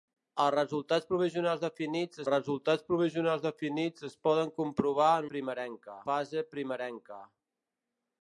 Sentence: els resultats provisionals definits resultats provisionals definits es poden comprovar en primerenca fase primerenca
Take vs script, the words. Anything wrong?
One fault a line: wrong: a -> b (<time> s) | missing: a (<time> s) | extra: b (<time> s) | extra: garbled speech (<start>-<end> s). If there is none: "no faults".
no faults